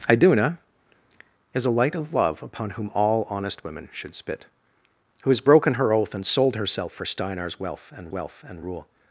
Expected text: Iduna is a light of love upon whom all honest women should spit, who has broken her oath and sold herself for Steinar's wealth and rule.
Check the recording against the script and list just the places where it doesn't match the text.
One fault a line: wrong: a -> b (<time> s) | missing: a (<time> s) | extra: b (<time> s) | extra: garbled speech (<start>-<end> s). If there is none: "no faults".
extra: wealth and (8.1 s)